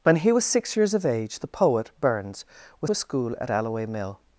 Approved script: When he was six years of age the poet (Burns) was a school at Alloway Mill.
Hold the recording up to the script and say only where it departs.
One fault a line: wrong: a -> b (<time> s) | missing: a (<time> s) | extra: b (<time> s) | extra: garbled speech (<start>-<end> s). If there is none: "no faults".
no faults